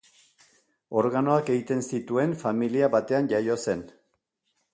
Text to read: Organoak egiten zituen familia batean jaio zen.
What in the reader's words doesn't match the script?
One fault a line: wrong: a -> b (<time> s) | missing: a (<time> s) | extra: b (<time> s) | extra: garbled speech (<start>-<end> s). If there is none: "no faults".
no faults